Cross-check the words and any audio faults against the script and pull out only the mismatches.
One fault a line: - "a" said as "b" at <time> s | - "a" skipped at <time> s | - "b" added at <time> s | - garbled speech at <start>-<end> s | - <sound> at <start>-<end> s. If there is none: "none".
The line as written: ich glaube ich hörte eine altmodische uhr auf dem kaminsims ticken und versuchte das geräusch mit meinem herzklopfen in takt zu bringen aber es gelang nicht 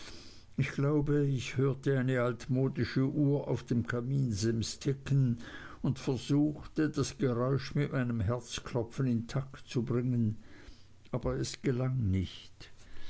none